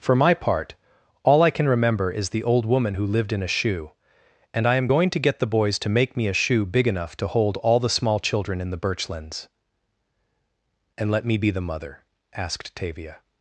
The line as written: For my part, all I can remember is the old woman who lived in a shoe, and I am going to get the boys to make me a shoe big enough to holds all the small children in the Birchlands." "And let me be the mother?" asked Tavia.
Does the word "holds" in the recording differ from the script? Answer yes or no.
yes